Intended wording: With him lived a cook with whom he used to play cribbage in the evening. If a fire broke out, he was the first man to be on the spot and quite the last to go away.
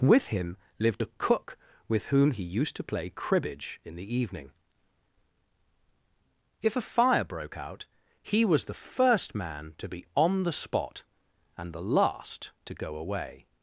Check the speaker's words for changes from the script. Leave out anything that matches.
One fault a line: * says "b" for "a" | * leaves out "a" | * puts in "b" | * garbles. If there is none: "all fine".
* leaves out "quite"